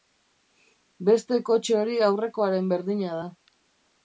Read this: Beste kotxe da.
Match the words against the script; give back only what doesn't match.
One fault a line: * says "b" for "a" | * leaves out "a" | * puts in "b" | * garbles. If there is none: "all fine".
* puts in "hori aurrekoaren berdina"